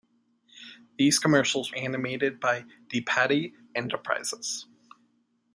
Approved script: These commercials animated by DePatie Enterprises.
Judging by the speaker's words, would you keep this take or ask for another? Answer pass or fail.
pass